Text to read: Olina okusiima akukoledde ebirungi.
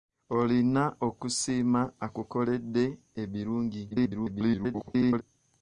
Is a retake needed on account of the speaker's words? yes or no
yes